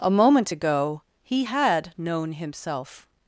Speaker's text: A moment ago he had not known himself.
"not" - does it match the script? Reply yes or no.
no